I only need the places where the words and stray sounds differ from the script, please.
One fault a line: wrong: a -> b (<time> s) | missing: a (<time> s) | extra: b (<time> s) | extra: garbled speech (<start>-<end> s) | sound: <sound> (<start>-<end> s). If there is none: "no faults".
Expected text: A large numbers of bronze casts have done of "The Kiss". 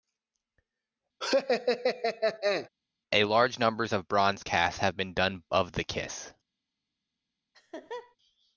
sound: laugh (1.2-2.7 s)
extra: been (5.0 s)
sound: laugh (7.5-8.2 s)